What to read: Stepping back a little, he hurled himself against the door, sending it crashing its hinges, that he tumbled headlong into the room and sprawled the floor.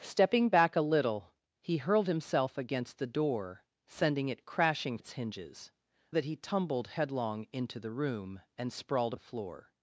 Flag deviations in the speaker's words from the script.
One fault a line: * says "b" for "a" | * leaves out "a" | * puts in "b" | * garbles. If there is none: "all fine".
all fine